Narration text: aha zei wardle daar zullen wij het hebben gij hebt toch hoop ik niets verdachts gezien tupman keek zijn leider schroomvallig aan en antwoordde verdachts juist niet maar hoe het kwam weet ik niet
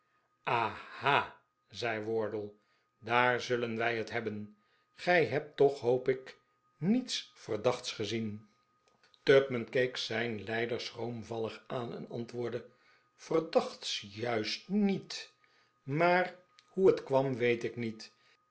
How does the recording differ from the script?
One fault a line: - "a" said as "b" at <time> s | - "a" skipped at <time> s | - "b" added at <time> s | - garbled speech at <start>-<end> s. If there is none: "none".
none